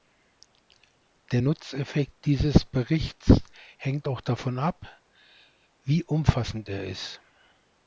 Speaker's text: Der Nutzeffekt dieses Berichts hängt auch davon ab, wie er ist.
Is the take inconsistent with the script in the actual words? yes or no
yes